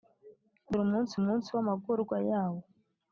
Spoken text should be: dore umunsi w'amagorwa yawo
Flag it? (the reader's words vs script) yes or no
yes